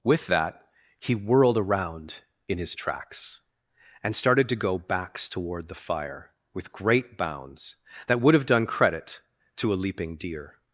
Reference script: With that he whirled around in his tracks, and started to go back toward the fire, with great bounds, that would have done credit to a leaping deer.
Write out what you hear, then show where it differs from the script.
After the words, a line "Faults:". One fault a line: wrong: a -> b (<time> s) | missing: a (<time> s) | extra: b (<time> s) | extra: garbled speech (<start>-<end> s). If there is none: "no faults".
With that he whirled around in his tracks, and started to go backs toward the fire, with great bounds, that would have done credit to a leaping deer.
Faults:
wrong: back -> backs (4.8 s)